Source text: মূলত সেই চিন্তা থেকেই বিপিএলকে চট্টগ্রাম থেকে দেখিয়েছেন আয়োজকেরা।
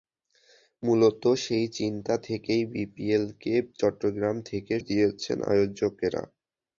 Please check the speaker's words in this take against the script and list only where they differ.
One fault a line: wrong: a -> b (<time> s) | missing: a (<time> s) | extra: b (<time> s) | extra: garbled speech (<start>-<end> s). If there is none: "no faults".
no faults